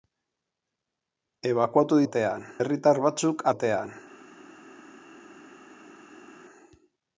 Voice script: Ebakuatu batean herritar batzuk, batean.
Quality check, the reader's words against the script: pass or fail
pass